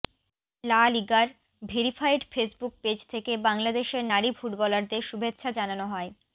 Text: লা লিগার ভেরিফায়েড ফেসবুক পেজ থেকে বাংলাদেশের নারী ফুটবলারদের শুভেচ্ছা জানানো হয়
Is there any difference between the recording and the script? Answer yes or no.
no